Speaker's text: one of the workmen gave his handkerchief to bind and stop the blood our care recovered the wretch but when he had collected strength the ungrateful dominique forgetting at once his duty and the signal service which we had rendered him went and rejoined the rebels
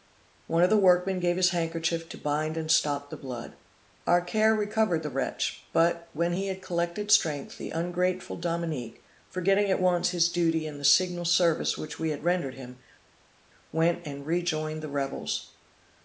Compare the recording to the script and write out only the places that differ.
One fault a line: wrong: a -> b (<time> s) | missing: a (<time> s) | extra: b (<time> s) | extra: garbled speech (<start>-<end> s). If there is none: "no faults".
no faults